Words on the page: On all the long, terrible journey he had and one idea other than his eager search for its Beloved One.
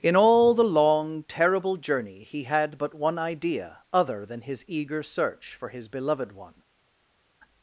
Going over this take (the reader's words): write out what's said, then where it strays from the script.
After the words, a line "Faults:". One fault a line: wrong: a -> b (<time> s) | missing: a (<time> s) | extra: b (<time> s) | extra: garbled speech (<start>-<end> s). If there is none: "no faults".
In all the long, terrible journey he had but one idea other than his eager search for his Beloved One.
Faults:
wrong: On -> In (0.0 s)
wrong: and -> but (2.8 s)
wrong: its -> his (5.7 s)